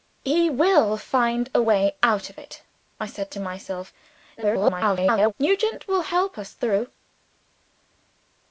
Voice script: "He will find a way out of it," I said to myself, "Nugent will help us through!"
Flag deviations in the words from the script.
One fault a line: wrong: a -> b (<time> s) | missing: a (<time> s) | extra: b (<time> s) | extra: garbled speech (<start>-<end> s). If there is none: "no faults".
extra: garbled speech (4.4-5.3 s)